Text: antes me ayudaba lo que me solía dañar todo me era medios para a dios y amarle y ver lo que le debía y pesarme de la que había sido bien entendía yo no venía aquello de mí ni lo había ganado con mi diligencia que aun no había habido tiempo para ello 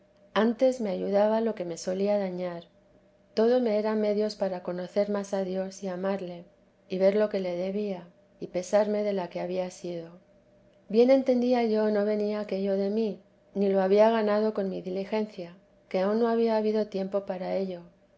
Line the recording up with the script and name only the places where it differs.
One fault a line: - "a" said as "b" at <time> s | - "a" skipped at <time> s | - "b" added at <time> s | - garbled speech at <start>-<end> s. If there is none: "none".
- "conocer más" added at 4.6 s